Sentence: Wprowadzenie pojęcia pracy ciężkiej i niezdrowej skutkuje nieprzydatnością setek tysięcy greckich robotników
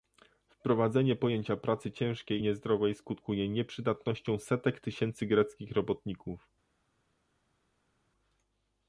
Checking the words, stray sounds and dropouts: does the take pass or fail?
pass